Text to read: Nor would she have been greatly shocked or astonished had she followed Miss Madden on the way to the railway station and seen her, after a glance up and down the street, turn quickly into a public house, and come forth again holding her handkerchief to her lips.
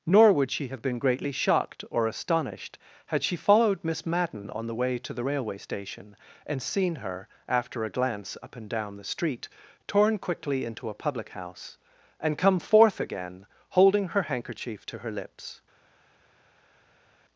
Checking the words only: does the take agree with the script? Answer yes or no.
no